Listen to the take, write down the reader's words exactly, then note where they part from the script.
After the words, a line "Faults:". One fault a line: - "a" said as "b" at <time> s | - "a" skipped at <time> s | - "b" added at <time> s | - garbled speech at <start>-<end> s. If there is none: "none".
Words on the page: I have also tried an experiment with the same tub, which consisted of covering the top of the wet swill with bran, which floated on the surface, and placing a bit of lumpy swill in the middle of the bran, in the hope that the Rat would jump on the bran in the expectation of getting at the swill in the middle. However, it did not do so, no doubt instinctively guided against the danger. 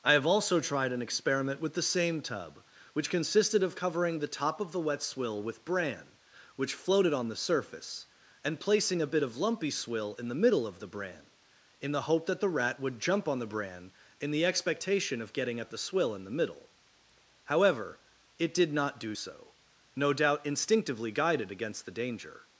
I have also tried an experiment with the same tub, which consisted of covering the top of the wet swill with bran, which floated on the surface, and placing a bit of lumpy swill in the middle of the bran, in the hope that the Rat would jump on the bran in the expectation of getting at the swill in the middle. However, it did not do so, no doubt instinctively guided against the danger.
Faults:
none